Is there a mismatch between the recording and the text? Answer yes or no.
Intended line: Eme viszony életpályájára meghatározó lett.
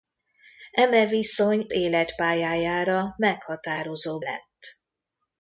no